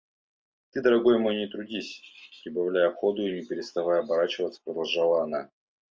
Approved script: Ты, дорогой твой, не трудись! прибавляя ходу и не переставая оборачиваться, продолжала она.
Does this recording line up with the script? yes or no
no